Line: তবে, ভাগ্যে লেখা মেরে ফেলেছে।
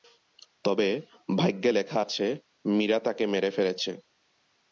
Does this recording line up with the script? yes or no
no